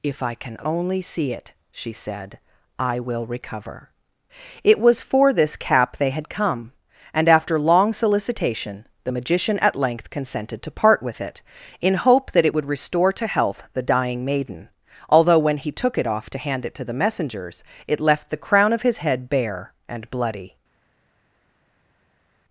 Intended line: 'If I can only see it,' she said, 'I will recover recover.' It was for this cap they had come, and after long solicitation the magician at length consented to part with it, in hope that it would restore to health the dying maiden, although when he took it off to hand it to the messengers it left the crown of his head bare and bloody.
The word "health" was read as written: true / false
true